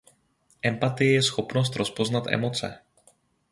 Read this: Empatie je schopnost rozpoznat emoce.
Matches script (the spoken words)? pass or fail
pass